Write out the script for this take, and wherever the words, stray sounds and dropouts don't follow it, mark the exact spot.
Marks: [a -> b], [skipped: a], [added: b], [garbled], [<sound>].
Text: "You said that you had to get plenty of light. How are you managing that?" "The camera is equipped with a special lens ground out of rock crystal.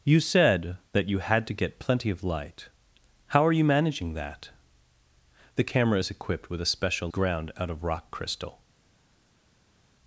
"You said that you had to get plenty of light. How are you managing that?" "The camera is equipped with a special [skipped: lens] ground out of rock crystal.